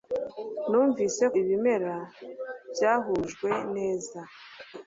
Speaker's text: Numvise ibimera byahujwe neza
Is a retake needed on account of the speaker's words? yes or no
no